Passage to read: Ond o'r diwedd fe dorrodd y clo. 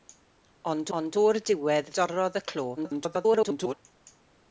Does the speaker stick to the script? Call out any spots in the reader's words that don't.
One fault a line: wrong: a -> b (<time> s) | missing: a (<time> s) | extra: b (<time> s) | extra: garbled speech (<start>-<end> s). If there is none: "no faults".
extra: ond (1.0 s)
missing: fe (1.9 s)
extra: garbled speech (2.8-3.7 s)